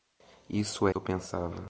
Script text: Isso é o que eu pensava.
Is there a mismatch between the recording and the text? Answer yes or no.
no